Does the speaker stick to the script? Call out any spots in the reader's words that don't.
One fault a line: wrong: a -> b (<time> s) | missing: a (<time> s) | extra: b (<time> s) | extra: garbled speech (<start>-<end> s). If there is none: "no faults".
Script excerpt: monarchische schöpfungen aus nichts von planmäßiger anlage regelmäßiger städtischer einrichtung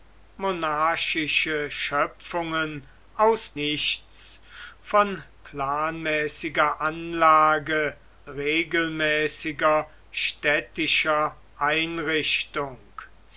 no faults